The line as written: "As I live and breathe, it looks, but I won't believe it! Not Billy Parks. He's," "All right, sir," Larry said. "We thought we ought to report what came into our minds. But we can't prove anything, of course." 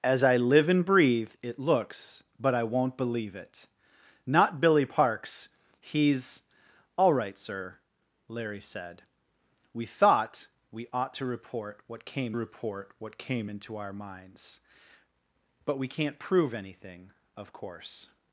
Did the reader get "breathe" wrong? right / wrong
right